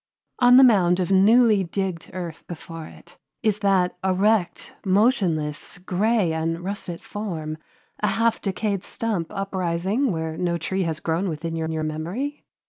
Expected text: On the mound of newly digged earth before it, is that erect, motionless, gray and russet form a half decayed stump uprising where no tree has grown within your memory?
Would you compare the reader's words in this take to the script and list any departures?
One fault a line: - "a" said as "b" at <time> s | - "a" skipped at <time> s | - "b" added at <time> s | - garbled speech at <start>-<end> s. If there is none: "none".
- "your" added at 11.7 s